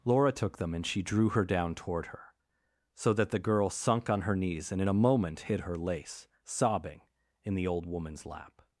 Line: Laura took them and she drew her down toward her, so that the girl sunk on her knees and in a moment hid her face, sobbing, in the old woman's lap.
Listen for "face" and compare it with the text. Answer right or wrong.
wrong